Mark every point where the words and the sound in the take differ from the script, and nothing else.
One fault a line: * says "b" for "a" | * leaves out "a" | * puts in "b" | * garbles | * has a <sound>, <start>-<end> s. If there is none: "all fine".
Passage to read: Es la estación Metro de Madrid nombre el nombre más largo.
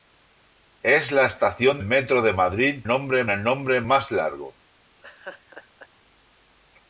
* has a laugh, 5.0-5.9 s